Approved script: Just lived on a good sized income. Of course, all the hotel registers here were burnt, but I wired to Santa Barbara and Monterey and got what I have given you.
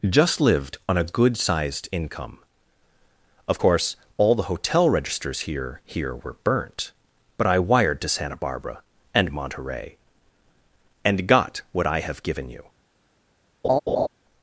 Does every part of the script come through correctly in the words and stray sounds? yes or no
no